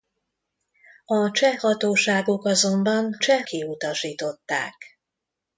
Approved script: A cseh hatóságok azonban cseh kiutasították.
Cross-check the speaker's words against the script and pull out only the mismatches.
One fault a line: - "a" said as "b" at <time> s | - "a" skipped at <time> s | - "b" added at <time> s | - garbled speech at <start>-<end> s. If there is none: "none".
none